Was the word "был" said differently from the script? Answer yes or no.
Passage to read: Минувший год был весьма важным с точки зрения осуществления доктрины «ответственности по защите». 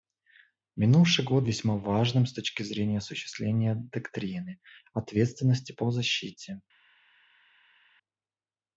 yes